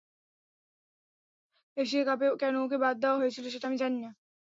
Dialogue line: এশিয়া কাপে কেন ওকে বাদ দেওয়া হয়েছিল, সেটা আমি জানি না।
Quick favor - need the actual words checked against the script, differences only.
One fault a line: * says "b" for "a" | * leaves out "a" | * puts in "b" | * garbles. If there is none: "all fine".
all fine